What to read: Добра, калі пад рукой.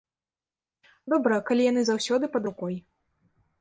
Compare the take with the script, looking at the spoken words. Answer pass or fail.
fail